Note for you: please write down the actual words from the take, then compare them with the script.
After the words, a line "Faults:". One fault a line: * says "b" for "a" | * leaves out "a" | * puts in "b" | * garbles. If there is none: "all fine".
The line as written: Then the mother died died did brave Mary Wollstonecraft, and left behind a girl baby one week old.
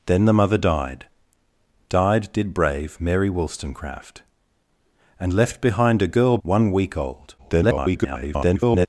Then the mother died died did brave Mary Wollstonecraft, and left behind a girl one week old. [garbled]
Faults:
* leaves out "baby"
* garbles